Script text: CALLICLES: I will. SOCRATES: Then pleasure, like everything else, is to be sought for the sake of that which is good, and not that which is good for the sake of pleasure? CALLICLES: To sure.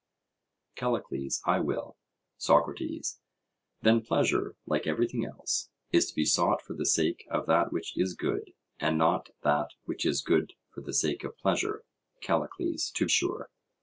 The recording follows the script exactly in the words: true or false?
true